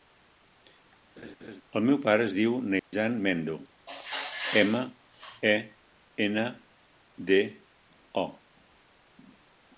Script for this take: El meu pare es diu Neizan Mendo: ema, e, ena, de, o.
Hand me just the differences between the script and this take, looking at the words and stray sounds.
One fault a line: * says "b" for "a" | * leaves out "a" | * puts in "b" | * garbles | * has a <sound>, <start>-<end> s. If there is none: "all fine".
* has a laugh, 1.2-1.6 s
* has a dropout, 2.8-2.9 s